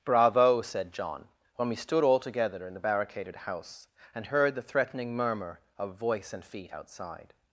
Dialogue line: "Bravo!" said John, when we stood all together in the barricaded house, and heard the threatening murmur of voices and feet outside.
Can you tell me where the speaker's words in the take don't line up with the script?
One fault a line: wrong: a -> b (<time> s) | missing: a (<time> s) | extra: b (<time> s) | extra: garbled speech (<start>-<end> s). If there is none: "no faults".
wrong: voices -> voice (6.0 s)